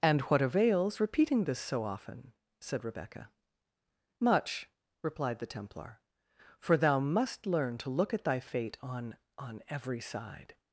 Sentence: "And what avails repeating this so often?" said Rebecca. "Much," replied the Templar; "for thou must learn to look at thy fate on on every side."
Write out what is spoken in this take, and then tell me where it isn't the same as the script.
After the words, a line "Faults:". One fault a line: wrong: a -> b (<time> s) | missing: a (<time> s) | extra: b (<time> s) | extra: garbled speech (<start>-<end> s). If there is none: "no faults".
"And what avails repeating this so often?" said Rebecca. "Much," replied the Templar; "for thou must learn to look at thy fate on on every side."
Faults:
no faults